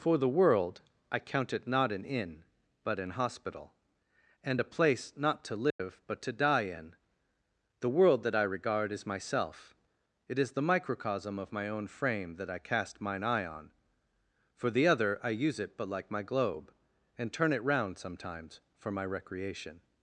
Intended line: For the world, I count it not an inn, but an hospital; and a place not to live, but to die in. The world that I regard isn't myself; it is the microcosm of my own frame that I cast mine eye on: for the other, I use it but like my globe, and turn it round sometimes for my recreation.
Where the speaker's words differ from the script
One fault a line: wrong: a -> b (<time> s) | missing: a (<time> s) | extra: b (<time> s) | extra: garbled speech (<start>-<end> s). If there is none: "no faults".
wrong: isn't -> is (8.9 s)